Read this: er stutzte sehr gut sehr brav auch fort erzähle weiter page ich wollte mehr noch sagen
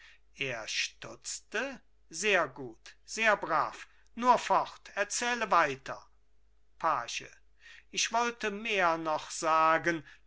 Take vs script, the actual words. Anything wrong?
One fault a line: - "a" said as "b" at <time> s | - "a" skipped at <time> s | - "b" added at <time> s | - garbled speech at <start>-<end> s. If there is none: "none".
- "auch" said as "nur" at 4.2 s